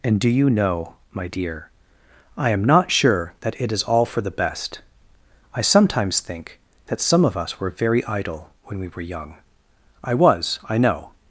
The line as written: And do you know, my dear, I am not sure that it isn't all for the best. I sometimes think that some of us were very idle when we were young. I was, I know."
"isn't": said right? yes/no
no